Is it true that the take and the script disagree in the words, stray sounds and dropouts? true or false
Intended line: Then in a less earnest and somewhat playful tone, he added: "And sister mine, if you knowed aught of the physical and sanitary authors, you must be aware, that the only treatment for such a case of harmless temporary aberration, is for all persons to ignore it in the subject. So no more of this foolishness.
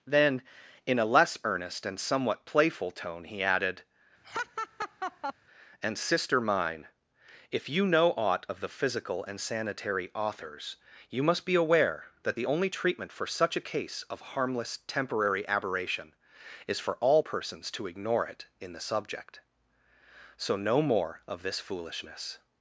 true